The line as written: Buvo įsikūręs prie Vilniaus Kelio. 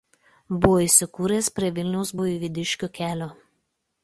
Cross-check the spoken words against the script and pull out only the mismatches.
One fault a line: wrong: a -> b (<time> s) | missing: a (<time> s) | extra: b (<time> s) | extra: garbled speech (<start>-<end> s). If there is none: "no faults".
extra: Buivydiškių (2.2 s)